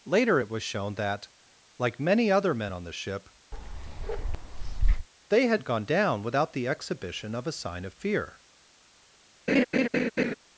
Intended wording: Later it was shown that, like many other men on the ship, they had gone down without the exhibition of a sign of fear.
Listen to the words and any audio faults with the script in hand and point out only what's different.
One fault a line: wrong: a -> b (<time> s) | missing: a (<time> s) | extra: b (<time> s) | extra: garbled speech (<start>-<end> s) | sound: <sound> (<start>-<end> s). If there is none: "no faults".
sound: bark (3.5-5.1 s)
sound: laugh (9.5-10.3 s)